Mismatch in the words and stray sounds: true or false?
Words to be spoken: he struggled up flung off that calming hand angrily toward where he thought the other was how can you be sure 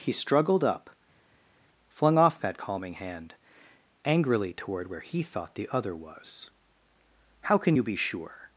false